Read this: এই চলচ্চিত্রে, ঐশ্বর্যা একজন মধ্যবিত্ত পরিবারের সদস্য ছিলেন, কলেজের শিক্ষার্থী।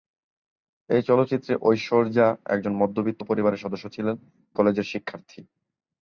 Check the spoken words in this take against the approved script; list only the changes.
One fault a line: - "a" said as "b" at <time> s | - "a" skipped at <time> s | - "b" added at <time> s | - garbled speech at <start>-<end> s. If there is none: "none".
none